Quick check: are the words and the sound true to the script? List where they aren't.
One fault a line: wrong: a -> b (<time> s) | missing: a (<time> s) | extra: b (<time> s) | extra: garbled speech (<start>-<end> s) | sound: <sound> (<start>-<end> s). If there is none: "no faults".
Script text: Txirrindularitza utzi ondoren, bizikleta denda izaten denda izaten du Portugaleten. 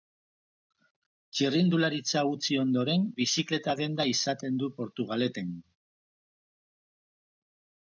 missing: denda izaten (4.6 s)